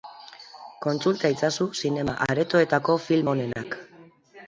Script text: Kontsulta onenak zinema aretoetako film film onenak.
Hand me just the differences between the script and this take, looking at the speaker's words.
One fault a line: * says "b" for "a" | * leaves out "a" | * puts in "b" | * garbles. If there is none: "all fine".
* says "itzazu" for "onenak"
* leaves out "film"